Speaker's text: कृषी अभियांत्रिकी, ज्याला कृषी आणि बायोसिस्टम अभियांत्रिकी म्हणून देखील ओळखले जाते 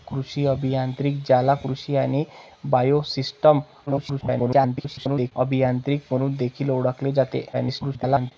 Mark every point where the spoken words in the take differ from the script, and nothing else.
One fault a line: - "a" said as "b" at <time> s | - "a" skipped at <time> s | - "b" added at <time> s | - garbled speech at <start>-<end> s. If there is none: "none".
- garbled speech at 3.9-5.3 s
- garbled speech at 7.5-8.3 s